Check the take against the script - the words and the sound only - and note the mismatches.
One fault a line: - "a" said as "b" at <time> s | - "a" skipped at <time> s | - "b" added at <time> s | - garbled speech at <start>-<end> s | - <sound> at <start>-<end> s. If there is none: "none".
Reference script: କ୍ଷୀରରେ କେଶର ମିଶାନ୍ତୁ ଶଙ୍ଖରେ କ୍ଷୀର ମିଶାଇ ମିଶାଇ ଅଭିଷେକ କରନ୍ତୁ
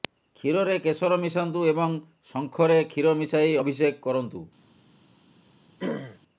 - "ଏବଂ" added at 1.7 s
- "ମିଶାଇ" skipped at 3.5 s
- throat clearing at 5.8-6.2 s